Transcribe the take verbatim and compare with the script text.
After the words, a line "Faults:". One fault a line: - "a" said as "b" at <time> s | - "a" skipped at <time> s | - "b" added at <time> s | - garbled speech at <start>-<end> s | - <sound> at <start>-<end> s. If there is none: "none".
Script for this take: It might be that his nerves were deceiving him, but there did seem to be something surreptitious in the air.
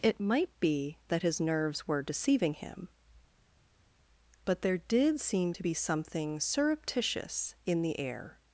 It might be that his nerves were deceiving him, but there did seem to be something surreptitious in the air.
Faults:
none